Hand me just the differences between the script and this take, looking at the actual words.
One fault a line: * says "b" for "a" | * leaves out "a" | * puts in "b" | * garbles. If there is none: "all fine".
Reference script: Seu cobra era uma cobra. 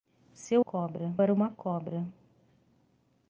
all fine